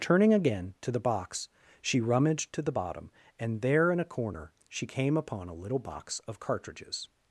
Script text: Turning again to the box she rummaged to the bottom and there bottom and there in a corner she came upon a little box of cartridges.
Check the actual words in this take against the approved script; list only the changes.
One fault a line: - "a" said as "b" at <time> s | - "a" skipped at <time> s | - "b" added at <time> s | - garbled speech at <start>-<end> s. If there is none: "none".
- "bottom and there" skipped at 3.9 s